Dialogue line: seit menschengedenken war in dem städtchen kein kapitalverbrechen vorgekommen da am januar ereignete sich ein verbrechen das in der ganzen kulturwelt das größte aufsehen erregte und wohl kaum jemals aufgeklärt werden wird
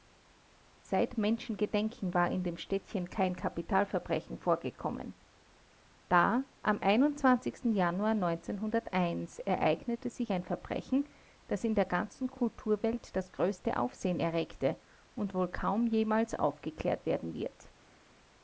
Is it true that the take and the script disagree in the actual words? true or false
false